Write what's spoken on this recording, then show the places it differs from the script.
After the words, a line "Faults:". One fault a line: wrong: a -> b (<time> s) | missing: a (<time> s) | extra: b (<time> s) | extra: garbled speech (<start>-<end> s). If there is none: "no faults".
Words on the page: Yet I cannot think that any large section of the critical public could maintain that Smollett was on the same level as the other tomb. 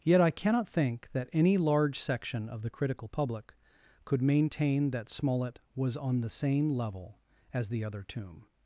Yet I cannot think that any large section of the critical public could maintain that Smollett was on the same level as the other tomb.
Faults:
no faults